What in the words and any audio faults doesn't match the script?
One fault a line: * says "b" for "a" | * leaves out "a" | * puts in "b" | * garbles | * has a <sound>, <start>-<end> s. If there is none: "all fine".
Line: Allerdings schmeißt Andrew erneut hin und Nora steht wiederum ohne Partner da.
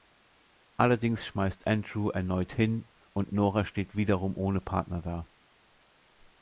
all fine